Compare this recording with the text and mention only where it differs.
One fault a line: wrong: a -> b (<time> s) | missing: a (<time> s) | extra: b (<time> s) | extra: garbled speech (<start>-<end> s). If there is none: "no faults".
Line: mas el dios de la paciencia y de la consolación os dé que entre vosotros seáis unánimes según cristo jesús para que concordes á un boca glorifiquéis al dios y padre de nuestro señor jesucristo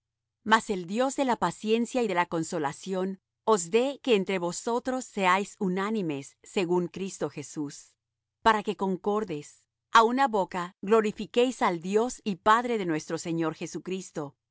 wrong: un -> una (10.0 s)